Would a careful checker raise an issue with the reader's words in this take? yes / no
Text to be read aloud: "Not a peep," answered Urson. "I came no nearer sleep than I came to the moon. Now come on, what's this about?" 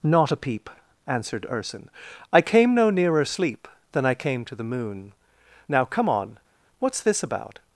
no